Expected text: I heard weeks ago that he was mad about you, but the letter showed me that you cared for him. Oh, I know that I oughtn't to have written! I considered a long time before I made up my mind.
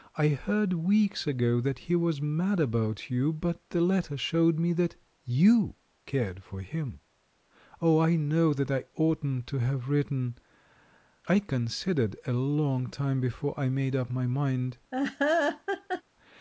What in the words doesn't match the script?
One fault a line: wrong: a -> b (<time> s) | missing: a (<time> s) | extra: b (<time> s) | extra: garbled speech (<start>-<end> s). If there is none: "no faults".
no faults